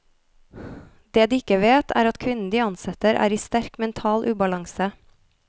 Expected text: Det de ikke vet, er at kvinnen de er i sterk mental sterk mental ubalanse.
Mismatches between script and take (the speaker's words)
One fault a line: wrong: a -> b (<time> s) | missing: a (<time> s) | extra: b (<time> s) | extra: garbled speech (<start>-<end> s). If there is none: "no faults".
extra: ansetter (2.6 s)
missing: sterk mental (4.2 s)